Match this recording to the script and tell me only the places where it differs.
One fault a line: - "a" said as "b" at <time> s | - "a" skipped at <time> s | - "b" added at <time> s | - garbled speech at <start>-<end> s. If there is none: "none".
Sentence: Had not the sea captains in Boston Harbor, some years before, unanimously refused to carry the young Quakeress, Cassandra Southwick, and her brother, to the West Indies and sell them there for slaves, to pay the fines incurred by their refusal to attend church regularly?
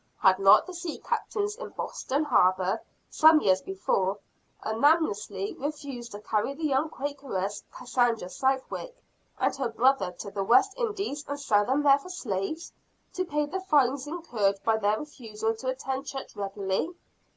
none